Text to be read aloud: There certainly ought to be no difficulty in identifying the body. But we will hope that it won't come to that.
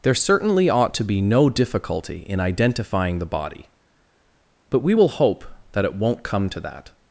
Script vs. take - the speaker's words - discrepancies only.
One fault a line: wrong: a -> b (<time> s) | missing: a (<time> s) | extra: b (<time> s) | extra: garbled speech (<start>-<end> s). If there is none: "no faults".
no faults